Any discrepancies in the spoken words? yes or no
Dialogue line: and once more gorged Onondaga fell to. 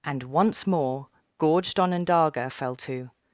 no